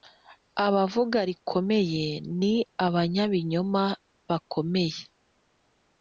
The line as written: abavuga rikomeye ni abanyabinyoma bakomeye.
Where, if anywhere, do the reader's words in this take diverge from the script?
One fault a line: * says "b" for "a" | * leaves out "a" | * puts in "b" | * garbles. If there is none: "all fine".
all fine